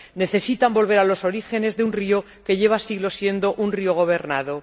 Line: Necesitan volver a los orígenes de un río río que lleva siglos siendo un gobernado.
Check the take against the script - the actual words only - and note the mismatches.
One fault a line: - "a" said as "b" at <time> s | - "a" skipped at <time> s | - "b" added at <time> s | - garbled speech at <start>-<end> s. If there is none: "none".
- "río" skipped at 2.2 s
- "río" added at 3.8 s